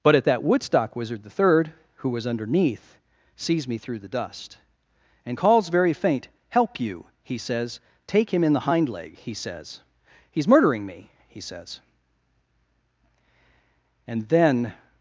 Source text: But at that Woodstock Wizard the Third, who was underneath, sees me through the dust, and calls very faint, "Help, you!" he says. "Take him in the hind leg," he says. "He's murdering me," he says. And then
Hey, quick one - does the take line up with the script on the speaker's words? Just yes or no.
yes